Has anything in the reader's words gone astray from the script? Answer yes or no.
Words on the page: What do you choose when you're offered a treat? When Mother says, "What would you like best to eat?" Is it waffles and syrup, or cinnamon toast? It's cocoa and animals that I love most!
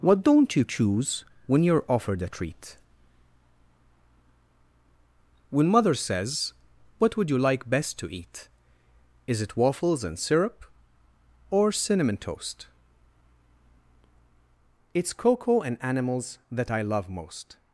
yes